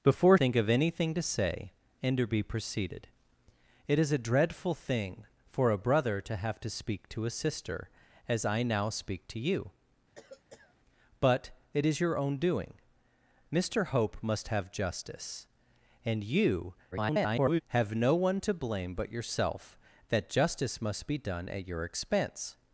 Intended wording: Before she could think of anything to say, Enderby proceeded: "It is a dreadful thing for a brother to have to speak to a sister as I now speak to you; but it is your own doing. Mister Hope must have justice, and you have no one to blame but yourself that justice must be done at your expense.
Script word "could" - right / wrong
wrong